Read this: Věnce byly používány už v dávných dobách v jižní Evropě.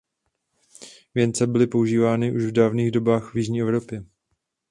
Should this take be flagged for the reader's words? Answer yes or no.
no